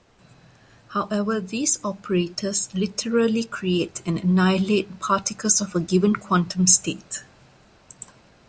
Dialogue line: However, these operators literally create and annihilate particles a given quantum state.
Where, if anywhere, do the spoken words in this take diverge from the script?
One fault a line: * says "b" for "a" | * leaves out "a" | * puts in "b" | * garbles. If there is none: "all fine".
* puts in "of"